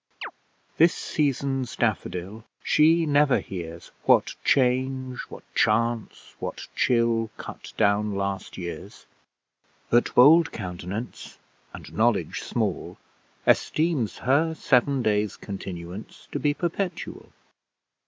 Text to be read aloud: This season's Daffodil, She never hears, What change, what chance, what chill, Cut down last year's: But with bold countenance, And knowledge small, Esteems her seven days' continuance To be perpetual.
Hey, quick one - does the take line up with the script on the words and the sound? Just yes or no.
no